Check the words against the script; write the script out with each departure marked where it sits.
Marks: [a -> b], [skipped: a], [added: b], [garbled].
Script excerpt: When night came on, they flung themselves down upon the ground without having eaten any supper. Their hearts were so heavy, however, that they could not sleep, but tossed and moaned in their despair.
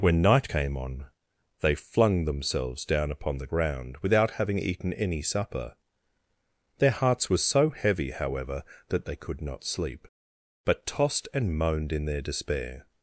When night came on, they flung themselves down upon the ground without having eaten any supper. Their hearts were so heavy, however, that they could not sleep, but tossed and moaned in their despair.